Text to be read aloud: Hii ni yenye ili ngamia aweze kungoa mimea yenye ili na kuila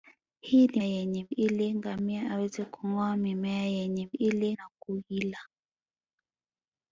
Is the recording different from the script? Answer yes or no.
no